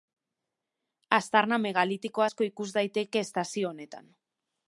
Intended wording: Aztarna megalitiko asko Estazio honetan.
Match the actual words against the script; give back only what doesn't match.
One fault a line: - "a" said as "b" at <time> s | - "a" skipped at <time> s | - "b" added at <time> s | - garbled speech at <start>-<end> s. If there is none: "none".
- "ikus daiteke" added at 2.5 s